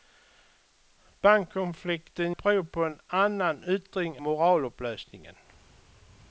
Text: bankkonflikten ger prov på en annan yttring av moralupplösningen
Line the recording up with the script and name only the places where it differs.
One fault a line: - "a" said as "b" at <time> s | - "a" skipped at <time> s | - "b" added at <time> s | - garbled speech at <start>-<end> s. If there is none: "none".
- "ger" skipped at 2.4 s
- "av" skipped at 4.2 s